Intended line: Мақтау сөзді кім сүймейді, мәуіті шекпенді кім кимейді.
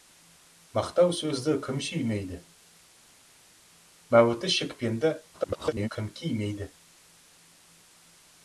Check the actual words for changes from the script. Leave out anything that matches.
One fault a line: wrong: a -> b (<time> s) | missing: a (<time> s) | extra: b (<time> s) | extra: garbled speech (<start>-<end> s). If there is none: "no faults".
extra: garbled speech (5.3-5.9 s)